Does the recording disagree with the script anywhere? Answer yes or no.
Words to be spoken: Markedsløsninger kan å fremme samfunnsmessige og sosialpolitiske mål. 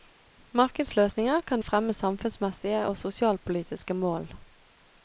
no